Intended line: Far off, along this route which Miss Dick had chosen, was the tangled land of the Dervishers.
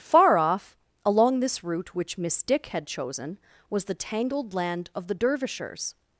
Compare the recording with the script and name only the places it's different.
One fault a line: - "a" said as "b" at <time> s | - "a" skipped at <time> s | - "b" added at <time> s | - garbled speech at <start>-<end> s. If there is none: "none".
none